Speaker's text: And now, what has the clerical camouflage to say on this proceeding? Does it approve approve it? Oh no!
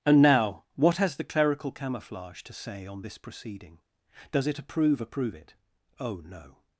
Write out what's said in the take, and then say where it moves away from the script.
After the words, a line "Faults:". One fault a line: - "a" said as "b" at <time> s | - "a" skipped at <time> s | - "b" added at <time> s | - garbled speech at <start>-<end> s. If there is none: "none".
And now, what has the clerical camouflage to say on this proceeding? Does it approve approve it? Oh no!
Faults:
none